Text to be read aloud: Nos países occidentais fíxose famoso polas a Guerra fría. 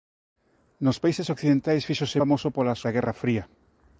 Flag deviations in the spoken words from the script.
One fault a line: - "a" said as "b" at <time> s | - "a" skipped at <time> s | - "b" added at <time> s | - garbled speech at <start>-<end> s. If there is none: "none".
none